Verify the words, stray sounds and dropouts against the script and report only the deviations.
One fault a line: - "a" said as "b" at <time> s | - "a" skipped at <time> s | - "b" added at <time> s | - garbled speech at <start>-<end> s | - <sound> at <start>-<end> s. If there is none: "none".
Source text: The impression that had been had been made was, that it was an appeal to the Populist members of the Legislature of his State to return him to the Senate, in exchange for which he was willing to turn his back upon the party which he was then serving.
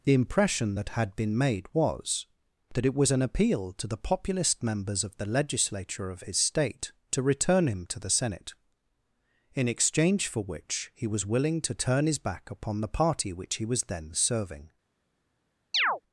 - "had been" skipped at 1.4 s
- chirp at 15.7-16.0 s